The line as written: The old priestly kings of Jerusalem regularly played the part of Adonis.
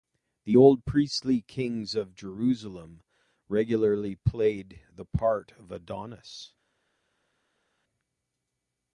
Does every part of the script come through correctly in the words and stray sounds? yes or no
yes